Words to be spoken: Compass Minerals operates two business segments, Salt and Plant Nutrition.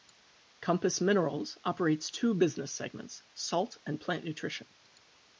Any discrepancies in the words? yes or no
no